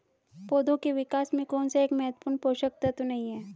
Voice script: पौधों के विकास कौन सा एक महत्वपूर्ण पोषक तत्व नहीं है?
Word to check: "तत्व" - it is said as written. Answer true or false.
true